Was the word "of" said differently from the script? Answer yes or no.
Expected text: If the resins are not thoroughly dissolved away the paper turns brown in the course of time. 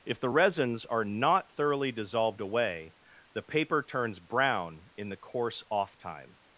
yes